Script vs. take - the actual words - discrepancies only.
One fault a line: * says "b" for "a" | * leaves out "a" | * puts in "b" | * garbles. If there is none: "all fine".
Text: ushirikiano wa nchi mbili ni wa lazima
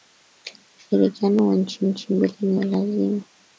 * puts in "nchi"